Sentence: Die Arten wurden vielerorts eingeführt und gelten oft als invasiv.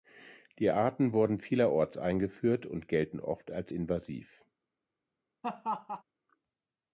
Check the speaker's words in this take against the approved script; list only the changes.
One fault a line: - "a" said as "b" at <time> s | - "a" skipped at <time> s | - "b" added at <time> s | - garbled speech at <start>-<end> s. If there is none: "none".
none